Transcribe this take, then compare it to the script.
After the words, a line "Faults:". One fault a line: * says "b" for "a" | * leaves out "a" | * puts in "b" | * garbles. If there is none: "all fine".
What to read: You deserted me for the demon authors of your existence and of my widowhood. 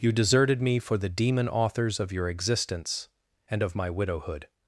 You deserted me for the demon authors of your existence and of my widowhood.
Faults:
all fine